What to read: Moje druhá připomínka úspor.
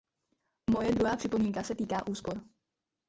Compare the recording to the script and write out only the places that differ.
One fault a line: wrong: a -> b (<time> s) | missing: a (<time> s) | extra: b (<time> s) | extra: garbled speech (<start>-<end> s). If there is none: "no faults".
extra: se týká (1.6 s)